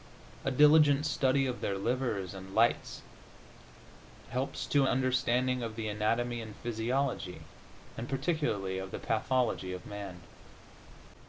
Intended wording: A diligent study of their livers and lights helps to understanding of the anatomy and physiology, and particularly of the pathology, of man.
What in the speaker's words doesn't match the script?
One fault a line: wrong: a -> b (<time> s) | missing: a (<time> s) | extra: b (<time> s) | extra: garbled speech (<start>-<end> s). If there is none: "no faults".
no faults